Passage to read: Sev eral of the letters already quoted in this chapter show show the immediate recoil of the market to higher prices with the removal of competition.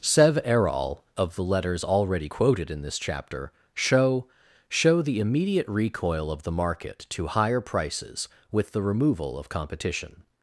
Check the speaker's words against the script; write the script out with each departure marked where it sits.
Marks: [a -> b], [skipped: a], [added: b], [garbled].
Sev eral of the letters already quoted in this chapter show show the immediate recoil of the market to higher prices with the removal of competition.